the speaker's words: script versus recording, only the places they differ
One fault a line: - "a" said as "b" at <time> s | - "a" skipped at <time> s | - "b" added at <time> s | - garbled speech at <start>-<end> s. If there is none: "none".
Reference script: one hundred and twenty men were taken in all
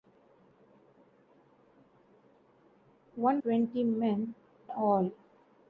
- "hundred and" skipped at 3.4 s
- "were taken in" skipped at 4.4 s